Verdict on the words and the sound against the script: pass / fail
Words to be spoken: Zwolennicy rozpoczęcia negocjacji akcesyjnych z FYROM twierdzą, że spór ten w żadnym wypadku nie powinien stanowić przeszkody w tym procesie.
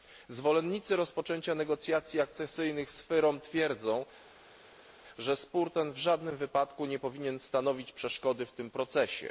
pass